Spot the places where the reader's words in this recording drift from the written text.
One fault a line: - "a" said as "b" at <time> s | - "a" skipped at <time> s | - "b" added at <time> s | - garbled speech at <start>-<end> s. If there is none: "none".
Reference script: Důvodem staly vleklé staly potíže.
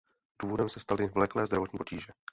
- "se" added at 0.7 s
- "staly" said as "zdravotní" at 1.4 s